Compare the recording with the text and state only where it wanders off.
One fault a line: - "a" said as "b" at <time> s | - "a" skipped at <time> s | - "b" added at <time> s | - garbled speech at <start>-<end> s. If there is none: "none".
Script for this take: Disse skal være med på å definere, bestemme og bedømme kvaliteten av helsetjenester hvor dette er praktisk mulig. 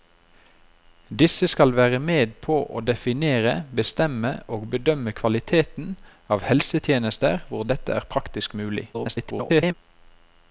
- garbled speech at 8.9-9.7 s